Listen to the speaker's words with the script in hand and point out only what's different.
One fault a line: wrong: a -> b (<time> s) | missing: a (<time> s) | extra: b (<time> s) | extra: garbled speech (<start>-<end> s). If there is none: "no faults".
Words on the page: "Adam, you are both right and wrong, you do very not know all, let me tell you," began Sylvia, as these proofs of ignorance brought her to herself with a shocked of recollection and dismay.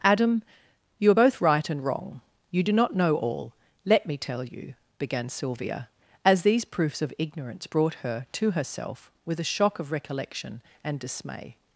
missing: very (2.7 s)
wrong: shocked -> shock (9.5 s)